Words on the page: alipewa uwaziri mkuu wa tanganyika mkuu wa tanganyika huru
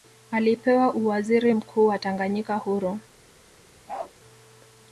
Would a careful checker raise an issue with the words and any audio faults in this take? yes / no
yes